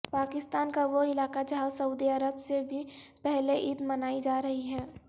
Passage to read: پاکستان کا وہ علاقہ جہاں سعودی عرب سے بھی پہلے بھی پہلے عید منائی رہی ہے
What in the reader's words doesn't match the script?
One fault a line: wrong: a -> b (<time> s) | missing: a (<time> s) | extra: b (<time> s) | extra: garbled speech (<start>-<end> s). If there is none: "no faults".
missing: بھی پہلے (3.6 s)
extra: جا (4.2 s)